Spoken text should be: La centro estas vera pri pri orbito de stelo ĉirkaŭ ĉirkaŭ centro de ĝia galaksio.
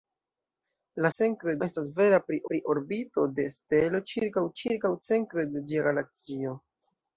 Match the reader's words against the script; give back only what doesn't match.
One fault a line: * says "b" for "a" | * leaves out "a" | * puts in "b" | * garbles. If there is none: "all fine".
all fine